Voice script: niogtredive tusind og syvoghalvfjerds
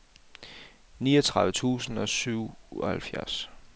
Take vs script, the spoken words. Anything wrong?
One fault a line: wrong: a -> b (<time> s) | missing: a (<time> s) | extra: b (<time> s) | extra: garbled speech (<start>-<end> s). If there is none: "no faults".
no faults